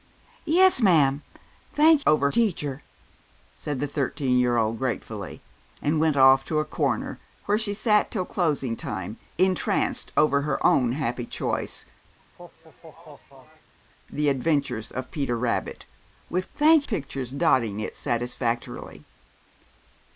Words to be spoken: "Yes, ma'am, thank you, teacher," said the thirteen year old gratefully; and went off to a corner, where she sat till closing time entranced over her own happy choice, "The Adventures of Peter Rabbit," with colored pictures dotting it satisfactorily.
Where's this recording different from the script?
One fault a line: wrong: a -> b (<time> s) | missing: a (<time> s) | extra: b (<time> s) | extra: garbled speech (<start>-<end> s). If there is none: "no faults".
wrong: you -> over (2.0 s)
wrong: colored -> thank (16.5 s)